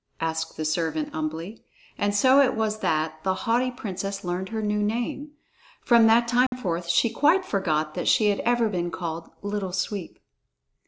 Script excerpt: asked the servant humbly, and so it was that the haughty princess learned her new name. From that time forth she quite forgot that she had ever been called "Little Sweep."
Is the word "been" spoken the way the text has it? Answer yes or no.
yes